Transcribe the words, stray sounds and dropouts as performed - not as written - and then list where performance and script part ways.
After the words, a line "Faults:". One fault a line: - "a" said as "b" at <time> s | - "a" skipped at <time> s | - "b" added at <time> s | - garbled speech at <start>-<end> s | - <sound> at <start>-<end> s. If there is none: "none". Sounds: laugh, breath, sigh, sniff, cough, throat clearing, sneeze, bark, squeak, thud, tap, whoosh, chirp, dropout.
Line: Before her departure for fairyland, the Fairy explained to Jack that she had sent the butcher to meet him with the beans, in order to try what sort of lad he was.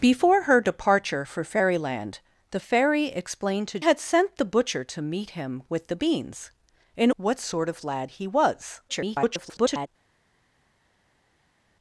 Before her departure for fairyland, the Fairy explained to Had sent the butcher to meet him with the beans, in what sort of lad he was. [garbled]
Faults:
- "Jack that she" skipped at 3.8 s
- "order to try" skipped at 7.1 s
- garbled speech at 8.9-9.9 s